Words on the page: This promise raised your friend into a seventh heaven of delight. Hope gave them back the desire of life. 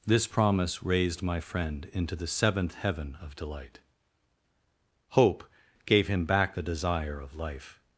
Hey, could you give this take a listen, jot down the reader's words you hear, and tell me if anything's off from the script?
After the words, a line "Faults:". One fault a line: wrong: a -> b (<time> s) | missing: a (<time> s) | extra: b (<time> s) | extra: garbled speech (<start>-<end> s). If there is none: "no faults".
This promise raised my friend into the seventh heaven of delight. Hope gave him back the desire of life.
Faults:
wrong: your -> my (1.2 s)
wrong: a -> the (2.1 s)
wrong: them -> him (6.1 s)